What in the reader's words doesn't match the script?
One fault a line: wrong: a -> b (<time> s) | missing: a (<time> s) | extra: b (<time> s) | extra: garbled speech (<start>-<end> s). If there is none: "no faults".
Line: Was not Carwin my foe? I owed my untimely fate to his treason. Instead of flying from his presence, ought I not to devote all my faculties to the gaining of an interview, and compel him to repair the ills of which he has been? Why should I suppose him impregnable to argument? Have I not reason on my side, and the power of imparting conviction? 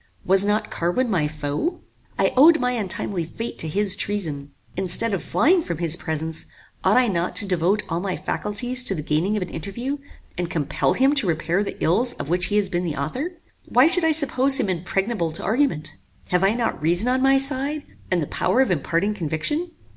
extra: the author (12.8 s)